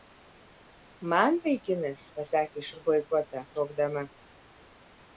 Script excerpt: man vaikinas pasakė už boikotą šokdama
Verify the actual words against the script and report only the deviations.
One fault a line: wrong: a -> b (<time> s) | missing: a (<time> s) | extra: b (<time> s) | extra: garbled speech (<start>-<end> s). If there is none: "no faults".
no faults